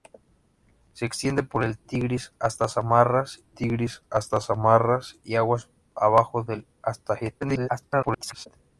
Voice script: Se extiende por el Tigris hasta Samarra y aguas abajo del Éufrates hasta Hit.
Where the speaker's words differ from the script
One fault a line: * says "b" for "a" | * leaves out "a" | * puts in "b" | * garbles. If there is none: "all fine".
* puts in "Tigris hasta Samarra"
* leaves out "Éufrates"
* garbles